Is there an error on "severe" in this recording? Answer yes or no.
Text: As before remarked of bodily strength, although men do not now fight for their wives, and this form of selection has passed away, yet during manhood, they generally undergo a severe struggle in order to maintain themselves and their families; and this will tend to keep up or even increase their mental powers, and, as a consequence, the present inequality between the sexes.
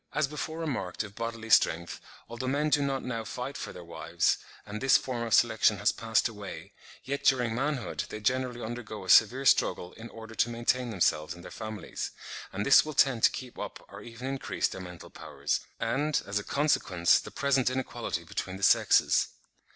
no